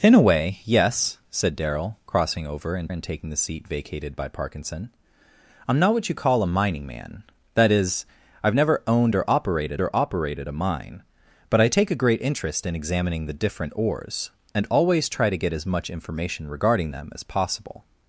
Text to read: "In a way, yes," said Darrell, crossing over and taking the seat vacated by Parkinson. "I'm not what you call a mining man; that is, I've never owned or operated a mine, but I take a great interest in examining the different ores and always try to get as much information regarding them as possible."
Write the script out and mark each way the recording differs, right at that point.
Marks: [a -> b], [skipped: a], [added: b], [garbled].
"In a way, yes," said Darrell, crossing over and [added: and] taking the seat vacated by Parkinson. "I'm not what you call a mining man; that is, I've never owned or operated [added: or operated] a mine, but I take a great interest in examining the different ores and always try to get as much information regarding them as possible."